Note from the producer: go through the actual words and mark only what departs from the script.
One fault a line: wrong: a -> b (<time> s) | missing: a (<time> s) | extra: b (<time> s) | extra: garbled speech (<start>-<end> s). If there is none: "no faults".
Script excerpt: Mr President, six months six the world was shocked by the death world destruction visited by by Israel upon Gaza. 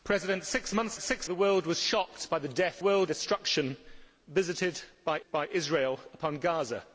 no faults